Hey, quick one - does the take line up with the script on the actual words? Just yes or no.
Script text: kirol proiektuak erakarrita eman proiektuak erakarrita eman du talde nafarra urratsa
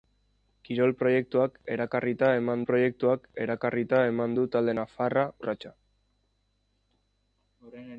yes